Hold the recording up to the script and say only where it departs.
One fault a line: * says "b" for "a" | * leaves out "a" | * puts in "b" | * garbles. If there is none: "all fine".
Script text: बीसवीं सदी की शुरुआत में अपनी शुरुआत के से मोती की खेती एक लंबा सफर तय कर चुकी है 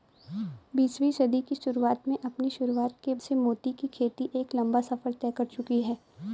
all fine